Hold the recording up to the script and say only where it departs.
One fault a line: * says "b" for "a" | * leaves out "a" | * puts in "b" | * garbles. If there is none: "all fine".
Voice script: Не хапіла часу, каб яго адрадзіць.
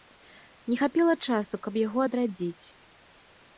all fine